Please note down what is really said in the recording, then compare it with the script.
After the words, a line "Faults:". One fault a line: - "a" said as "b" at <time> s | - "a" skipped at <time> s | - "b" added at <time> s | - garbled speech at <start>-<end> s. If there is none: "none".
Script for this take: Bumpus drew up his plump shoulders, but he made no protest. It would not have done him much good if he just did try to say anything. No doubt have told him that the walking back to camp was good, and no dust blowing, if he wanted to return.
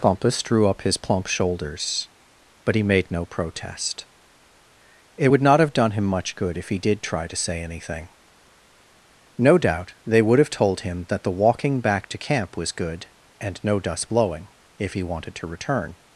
Bumpus drew up his plump shoulders, but he made no protest. It would not have done him much good if he did try to say anything. No doubt they would have told him that the walking back to camp was good, and no dust blowing, if he wanted to return.
Faults:
- "just" skipped at 6.8 s
- "they would" added at 10.1 s